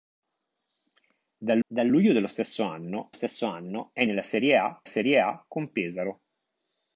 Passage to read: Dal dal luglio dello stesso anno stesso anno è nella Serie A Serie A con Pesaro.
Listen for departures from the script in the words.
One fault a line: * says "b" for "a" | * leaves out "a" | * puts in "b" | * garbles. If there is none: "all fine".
all fine